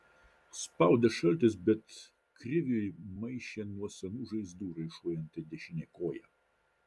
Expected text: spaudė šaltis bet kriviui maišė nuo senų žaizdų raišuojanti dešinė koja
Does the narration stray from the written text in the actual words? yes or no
no